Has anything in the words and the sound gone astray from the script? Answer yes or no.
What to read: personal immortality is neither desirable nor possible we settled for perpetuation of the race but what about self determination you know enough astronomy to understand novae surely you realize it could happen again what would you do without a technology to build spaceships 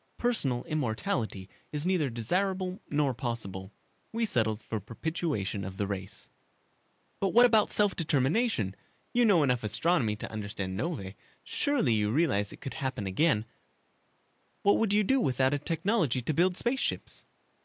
no